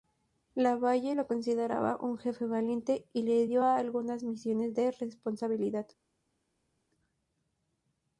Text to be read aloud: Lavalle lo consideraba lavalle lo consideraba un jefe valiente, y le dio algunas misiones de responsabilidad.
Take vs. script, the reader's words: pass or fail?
fail